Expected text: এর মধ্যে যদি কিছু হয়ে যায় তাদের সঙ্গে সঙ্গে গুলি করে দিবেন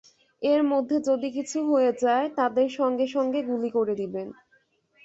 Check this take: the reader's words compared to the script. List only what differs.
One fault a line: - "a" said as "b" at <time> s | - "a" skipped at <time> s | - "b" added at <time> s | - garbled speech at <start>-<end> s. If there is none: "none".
none